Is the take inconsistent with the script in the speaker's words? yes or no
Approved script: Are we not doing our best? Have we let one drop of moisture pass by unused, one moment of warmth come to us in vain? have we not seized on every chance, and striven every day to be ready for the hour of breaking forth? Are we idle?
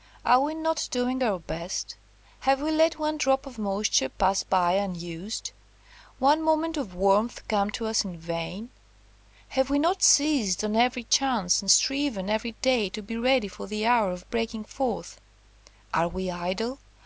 no